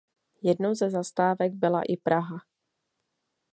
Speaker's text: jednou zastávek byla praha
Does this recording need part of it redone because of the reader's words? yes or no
yes